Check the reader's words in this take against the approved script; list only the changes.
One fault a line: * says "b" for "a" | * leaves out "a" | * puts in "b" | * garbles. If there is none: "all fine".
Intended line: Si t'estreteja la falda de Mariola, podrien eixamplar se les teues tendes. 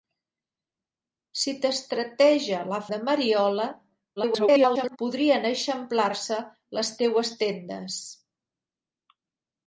* leaves out "falda"
* garbles